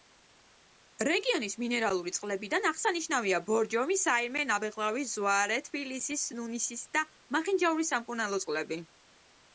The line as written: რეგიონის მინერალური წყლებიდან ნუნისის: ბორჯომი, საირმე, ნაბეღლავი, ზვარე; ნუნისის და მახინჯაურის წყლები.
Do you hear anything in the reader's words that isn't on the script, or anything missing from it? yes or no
yes